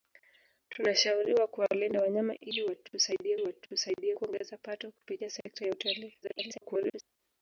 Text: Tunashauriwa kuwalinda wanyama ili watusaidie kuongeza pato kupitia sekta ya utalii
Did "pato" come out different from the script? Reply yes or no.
no